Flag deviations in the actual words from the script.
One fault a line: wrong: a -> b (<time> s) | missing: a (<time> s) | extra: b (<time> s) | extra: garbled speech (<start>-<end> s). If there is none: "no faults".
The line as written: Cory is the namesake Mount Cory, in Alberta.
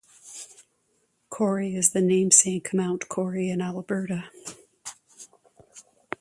no faults